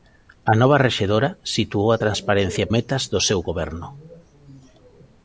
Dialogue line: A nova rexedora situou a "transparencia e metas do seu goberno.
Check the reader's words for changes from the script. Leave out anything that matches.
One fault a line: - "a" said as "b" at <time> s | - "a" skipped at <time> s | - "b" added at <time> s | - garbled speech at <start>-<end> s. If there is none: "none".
none